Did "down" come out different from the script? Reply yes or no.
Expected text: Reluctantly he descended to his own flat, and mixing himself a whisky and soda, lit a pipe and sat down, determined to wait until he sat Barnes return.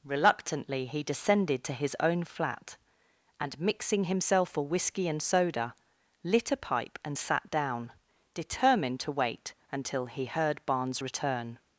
no